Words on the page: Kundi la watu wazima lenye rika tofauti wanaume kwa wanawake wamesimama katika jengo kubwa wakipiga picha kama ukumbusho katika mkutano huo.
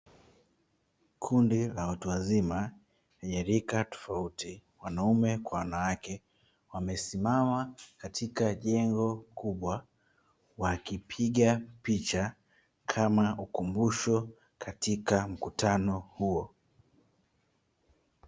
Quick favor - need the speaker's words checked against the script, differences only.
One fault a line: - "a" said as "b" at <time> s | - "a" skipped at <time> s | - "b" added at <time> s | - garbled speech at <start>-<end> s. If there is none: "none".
none